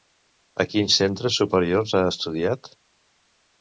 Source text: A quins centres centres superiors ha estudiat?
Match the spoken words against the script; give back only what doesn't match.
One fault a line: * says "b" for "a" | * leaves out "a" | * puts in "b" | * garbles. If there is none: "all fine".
* leaves out "centres"